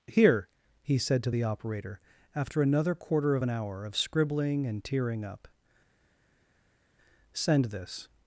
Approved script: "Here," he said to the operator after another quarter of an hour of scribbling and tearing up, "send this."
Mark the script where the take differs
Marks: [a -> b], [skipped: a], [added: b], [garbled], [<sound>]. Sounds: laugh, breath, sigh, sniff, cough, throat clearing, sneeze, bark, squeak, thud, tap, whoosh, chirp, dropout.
"Here," he said to the operator after another quarter of an hour of scribbling and tearing up, "send this."